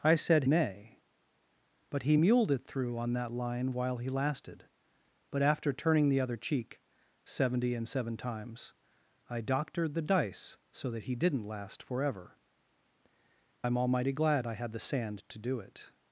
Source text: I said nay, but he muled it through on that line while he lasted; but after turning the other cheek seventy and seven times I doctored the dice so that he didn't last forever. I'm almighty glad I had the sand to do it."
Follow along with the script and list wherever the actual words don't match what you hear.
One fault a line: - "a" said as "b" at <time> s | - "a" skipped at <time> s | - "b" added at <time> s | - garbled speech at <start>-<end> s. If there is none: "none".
none